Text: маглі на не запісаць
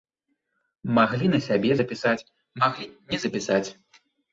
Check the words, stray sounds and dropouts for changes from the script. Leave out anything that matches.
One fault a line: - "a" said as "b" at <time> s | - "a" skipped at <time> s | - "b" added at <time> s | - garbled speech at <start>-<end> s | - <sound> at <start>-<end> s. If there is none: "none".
- "сябе запісаць маглі" added at 1.5 s